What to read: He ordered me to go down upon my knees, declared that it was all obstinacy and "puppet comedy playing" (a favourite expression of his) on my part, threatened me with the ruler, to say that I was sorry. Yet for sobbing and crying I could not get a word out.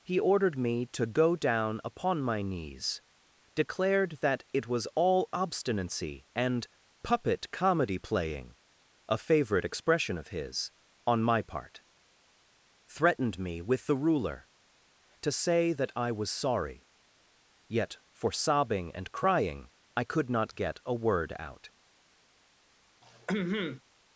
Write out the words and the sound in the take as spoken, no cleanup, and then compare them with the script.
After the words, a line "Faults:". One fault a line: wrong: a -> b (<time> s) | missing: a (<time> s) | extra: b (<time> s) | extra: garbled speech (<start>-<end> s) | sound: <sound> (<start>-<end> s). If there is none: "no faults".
He ordered me to go down upon my knees, declared that it was all obstinacy and "puppet comedy playing" (a favourite expression of his) on my part, threatened me with the ruler, to say that I was sorry. Yet for sobbing and crying I could not get a word out.
Faults:
sound: throat clearing (23.0-23.8 s)